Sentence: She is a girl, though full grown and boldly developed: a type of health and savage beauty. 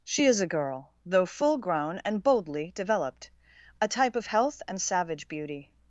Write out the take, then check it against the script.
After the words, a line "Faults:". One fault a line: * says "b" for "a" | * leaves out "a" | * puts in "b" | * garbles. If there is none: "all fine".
She is a girl, though full grown and boldly developed: a type of health and savage beauty.
Faults:
all fine